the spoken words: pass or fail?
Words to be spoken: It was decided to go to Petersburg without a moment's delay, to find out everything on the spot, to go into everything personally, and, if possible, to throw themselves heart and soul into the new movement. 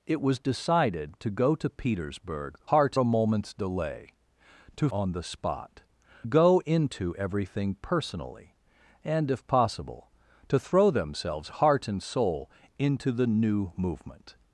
fail